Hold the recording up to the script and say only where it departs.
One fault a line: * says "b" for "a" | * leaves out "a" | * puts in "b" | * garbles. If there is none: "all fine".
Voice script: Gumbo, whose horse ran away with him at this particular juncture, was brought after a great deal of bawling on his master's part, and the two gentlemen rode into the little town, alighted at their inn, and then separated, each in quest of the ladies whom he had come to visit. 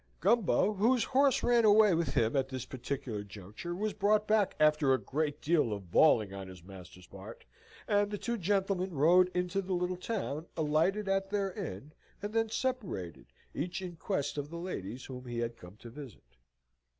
* puts in "back"